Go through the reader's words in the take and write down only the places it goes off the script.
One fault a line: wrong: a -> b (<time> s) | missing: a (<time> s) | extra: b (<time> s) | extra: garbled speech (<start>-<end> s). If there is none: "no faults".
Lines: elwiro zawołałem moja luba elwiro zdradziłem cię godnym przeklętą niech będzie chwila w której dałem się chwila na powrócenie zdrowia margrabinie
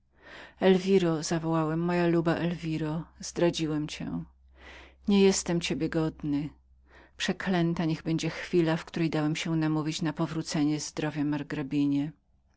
extra: nie jestem ciebie (5.1 s)
wrong: chwila -> namówić (9.6 s)